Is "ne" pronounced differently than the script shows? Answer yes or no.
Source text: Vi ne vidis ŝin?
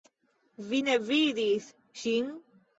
no